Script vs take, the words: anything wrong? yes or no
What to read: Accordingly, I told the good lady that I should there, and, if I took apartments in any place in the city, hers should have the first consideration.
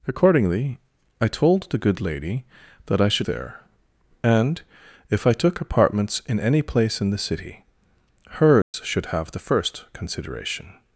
no